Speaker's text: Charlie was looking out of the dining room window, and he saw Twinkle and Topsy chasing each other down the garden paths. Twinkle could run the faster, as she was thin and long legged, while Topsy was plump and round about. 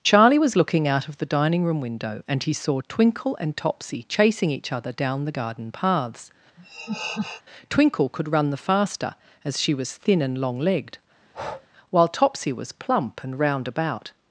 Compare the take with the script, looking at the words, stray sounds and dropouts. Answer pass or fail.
fail